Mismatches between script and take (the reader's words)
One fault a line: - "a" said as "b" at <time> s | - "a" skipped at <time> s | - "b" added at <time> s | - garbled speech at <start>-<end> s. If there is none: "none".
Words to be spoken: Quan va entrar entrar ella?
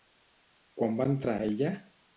- "entrar" skipped at 1.4 s